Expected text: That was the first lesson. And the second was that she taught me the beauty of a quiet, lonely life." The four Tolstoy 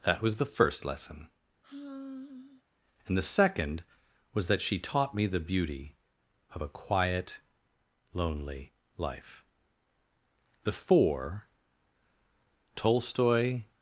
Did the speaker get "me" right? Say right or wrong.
right